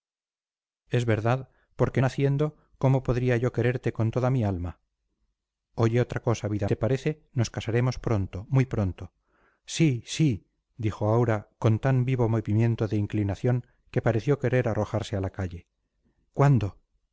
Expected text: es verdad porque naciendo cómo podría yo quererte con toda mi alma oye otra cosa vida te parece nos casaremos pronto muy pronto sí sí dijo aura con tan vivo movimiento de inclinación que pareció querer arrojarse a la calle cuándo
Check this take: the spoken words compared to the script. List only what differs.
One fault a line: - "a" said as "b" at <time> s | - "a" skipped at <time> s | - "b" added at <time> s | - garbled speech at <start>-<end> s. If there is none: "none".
none